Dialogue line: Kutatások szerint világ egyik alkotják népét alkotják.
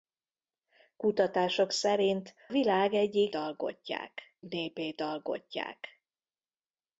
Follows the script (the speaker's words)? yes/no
yes